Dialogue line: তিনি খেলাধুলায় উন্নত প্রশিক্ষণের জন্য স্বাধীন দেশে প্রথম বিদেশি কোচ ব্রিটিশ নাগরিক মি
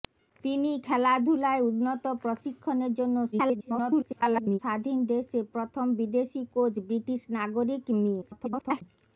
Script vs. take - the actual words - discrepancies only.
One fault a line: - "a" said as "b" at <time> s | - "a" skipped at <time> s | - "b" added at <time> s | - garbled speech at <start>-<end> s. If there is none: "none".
- garbled speech at 3.3-4.6 s
- garbled speech at 8.2-8.8 s